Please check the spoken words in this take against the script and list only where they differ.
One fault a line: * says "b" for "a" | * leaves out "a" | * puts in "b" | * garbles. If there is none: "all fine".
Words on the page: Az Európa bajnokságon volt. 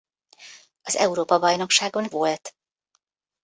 all fine